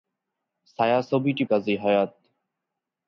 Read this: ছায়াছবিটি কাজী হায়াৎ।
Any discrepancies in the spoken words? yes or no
no